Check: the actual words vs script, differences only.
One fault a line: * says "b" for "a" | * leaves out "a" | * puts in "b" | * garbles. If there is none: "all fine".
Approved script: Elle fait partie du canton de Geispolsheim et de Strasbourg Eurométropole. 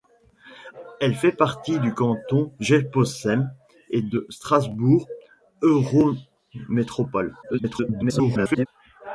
* leaves out "de"
* garbles